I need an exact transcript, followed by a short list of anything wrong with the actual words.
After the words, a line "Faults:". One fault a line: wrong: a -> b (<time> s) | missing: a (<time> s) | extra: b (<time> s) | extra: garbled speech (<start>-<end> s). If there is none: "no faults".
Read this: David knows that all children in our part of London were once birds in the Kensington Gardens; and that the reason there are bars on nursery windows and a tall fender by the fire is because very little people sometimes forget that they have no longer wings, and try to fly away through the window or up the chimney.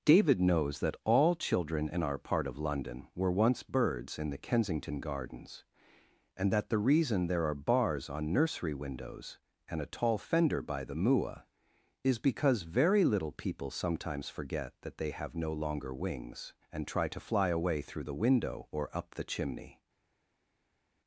David knows that all children in our part of London were once birds in the Kensington Gardens; and that the reason there are bars on nursery windows and a tall fender by the mua is because very little people sometimes forget that they have no longer wings, and try to fly away through the window or up the chimney.
Faults:
wrong: fire -> mua (10.9 s)